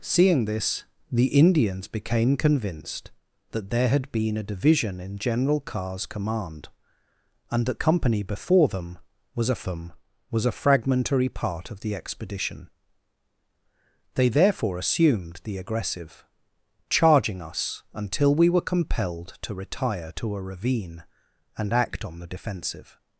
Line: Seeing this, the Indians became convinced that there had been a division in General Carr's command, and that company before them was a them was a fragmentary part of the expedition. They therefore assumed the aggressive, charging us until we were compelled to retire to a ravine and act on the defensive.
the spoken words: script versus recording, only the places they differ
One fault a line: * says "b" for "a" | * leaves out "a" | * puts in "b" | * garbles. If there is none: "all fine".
all fine